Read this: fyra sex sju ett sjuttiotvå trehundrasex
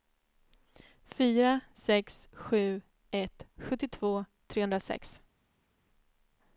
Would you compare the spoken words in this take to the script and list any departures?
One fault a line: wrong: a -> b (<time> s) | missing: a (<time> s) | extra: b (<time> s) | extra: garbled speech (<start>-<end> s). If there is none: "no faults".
no faults